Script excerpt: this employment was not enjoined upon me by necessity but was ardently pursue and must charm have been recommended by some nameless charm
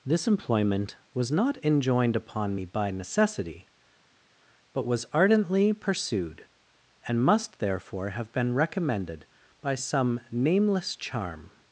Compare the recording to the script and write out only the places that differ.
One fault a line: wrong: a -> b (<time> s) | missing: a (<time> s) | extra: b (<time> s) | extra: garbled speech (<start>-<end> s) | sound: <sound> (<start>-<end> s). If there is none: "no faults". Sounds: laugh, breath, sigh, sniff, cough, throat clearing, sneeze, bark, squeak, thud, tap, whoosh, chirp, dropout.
wrong: pursue -> pursued (5.7 s)
wrong: charm -> therefore (7.6 s)